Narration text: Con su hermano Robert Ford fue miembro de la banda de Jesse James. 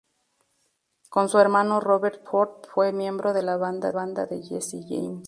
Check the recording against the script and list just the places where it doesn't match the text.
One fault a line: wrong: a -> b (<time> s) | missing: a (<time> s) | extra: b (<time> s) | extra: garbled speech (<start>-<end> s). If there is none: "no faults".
extra: banda (3.9 s)